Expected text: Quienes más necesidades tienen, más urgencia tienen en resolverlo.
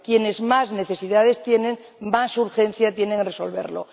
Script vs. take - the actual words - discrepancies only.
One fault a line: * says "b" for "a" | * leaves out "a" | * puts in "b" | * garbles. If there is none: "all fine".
all fine